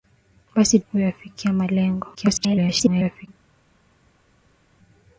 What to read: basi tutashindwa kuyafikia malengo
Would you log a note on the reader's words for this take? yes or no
yes